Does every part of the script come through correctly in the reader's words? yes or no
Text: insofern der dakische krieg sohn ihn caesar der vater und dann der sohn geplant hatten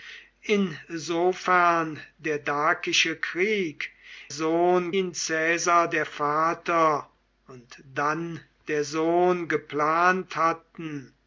yes